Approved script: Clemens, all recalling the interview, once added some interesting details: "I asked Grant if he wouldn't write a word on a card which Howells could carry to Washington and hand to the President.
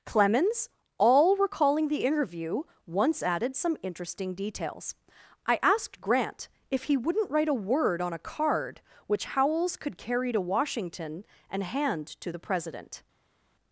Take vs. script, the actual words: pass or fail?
pass